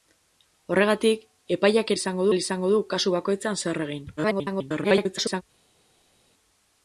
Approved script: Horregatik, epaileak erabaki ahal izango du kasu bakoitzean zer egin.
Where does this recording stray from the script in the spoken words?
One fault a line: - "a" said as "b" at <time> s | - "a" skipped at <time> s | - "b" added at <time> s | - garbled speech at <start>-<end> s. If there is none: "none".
- "erabaki" said as "izango" at 2.0 s
- garbled speech at 4.2-5.4 s